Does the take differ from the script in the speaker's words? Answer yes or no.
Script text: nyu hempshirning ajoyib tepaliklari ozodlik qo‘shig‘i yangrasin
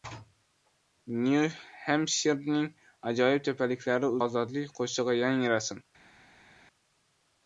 no